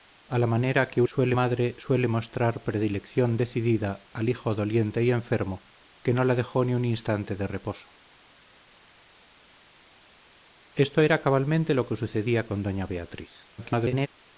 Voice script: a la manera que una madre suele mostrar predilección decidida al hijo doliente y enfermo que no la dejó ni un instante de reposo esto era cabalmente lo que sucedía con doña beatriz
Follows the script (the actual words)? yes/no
no